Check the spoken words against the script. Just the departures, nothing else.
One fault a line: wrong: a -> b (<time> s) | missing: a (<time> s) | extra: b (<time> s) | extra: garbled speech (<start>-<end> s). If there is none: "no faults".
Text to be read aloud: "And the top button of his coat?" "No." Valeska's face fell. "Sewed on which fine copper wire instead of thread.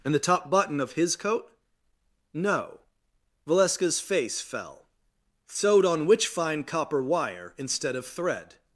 no faults